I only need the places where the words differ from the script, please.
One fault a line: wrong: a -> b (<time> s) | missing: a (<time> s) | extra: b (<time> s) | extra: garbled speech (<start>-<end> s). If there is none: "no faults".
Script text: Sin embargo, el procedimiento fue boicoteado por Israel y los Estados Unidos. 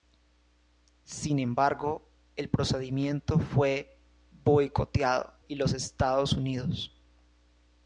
missing: por Israel (5.3 s)